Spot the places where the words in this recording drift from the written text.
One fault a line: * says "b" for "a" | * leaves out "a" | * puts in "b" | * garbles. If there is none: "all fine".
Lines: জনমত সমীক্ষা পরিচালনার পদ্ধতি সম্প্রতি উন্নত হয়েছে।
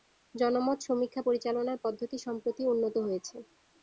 all fine